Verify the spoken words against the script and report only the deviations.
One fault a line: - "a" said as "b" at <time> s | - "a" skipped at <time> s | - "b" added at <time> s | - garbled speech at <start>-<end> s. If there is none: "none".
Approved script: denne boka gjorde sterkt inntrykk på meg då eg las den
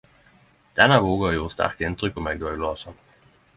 none